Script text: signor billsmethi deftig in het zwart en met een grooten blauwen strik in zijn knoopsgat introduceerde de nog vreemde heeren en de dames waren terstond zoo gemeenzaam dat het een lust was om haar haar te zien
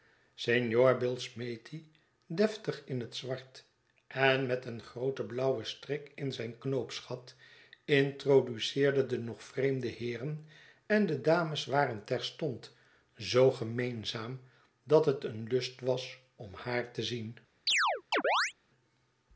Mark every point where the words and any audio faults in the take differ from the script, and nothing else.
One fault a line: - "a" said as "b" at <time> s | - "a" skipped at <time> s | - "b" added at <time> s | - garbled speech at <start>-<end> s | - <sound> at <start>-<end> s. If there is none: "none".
- "haar" skipped at 16.9 s
- chirp at 17.7-18.5 s